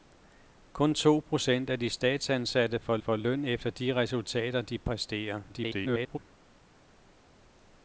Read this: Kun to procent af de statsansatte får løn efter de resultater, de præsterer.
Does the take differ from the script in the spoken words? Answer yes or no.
yes